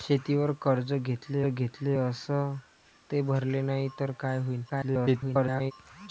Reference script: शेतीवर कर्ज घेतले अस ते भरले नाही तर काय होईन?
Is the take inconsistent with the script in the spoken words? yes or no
yes